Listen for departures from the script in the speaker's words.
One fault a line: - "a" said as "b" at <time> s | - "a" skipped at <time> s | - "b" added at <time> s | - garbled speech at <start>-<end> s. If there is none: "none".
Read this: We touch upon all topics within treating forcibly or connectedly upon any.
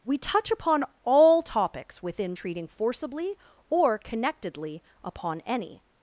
none